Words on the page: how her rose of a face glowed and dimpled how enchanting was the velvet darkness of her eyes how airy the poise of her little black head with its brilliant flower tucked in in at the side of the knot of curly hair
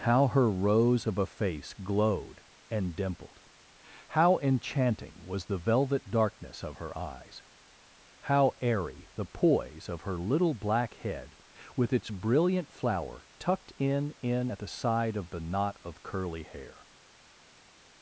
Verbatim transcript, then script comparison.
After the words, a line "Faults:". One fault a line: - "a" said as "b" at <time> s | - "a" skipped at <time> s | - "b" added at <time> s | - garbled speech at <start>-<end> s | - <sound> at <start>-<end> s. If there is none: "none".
how her rose of a face glowed and dimpled how enchanting was the velvet darkness of her eyes how airy the poise of her little black head with its brilliant flower tucked in in at the side of the knot of curly hair
Faults:
none